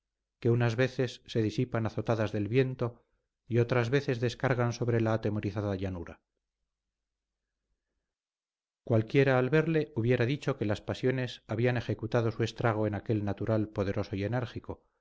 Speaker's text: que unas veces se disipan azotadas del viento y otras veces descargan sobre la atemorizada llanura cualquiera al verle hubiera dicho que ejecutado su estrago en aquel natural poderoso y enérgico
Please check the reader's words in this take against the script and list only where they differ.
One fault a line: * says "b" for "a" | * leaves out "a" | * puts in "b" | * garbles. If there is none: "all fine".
* puts in "las pasiones habían"